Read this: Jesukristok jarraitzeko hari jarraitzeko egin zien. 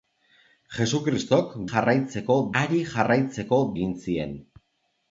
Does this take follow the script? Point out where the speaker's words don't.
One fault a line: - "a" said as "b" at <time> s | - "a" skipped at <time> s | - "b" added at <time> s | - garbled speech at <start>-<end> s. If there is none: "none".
none